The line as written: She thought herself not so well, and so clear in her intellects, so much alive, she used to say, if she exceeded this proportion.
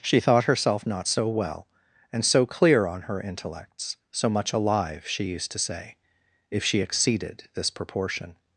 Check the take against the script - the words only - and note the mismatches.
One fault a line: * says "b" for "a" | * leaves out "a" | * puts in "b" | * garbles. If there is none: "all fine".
* says "on" for "in"